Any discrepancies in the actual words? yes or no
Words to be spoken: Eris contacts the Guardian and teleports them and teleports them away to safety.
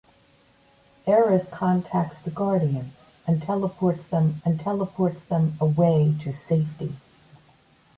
no